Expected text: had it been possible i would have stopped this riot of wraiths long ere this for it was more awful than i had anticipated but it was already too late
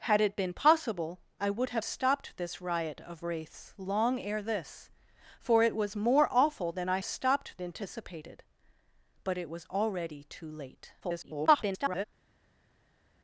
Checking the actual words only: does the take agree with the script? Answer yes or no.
no